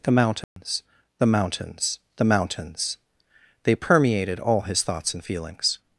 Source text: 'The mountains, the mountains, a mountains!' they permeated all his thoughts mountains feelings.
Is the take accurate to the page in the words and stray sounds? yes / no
no